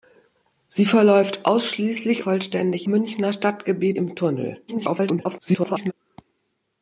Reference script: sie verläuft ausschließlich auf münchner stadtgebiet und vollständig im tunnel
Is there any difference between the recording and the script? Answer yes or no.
yes